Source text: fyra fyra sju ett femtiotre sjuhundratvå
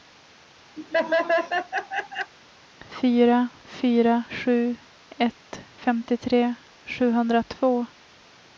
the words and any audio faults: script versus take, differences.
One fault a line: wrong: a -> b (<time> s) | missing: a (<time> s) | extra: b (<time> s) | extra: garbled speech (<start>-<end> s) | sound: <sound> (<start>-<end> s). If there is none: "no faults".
sound: laugh (0.8-2.3 s)